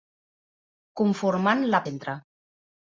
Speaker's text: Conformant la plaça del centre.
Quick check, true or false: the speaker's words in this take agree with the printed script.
false